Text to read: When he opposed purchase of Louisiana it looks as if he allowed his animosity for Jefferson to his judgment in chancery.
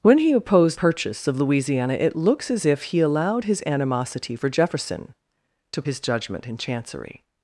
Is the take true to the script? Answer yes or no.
yes